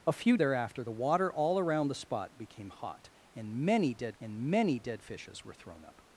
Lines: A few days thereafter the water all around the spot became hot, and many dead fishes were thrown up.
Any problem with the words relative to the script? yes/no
yes